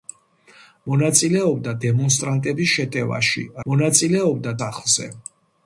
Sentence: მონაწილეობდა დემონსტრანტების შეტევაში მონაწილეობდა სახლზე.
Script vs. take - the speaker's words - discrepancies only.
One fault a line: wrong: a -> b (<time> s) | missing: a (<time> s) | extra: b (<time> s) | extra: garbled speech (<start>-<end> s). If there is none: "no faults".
no faults